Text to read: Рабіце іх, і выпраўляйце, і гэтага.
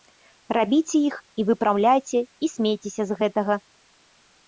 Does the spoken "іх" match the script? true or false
true